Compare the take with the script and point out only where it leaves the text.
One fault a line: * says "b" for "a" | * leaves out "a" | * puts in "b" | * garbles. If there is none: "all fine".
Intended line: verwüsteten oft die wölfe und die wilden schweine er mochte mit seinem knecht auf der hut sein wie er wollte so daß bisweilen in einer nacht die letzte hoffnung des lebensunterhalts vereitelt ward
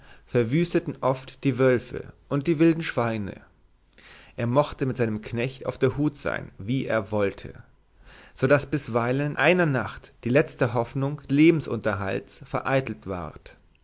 * leaves out "in"
* leaves out "des"